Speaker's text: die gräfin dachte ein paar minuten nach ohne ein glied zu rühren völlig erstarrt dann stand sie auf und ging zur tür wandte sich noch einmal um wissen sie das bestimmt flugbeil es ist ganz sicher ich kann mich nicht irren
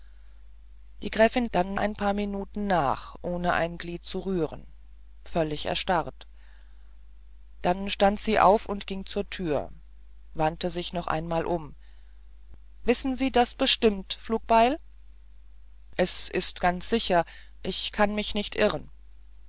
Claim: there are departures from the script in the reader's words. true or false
true